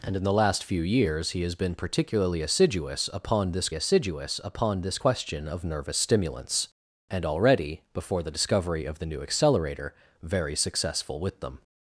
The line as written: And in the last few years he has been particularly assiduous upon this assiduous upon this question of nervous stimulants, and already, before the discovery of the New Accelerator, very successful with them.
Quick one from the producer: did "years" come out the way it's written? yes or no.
yes